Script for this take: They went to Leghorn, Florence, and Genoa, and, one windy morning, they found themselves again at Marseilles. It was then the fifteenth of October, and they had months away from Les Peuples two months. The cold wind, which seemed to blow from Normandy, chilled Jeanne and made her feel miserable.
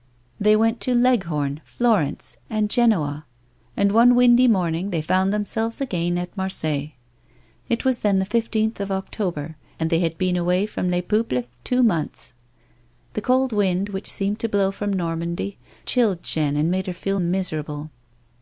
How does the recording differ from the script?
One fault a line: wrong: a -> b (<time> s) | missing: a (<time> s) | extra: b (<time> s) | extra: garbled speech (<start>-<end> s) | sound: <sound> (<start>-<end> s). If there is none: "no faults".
wrong: months -> been (10.2 s)